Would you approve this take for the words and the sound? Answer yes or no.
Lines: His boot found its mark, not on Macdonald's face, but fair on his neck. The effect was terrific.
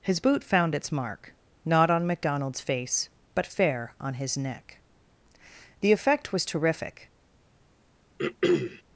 no